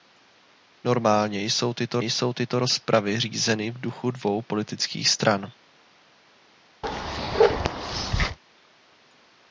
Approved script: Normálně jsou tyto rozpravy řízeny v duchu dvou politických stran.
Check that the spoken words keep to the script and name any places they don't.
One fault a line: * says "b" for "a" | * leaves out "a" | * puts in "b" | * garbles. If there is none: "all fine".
* puts in "jsou tyto"